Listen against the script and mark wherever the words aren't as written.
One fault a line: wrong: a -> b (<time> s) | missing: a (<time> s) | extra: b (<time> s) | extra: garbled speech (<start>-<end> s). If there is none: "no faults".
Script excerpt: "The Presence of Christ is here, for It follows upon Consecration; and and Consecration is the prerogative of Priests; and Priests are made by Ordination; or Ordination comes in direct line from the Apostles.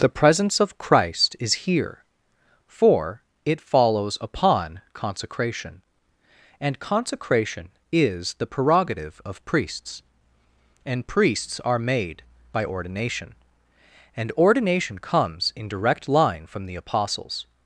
missing: and (6.8 s)
wrong: or -> and (14.2 s)